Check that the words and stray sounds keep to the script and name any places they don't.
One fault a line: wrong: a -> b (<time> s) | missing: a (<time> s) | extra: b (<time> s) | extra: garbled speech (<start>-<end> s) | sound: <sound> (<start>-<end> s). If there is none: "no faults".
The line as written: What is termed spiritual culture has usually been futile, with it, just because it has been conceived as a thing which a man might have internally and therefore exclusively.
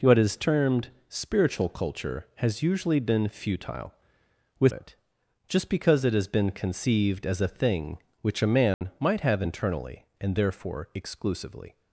sound: dropout (8.7-8.8 s)